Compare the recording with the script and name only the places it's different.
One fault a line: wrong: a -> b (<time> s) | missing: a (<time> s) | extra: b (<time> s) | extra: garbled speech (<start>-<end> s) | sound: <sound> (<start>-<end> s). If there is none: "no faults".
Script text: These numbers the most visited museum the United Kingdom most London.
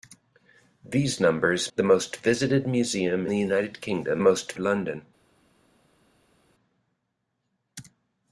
no faults